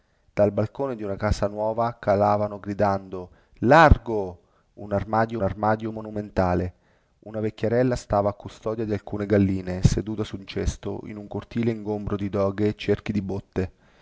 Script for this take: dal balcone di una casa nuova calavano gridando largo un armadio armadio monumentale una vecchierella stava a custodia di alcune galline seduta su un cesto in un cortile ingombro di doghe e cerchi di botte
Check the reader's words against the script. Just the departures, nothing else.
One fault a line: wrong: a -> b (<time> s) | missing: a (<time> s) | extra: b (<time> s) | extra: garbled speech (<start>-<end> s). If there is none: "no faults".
no faults